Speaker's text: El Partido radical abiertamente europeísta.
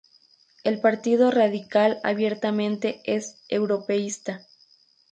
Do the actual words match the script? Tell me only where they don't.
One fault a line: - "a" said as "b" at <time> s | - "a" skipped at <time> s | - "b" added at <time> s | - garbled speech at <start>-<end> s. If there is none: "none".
- "es" added at 3.0 s